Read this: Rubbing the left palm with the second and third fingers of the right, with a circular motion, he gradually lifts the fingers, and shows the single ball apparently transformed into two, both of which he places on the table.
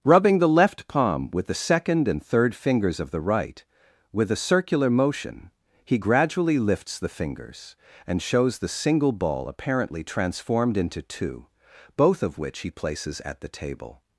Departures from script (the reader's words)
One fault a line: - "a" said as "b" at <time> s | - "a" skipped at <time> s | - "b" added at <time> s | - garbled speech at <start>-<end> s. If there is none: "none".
- "on" said as "at" at 13.3 s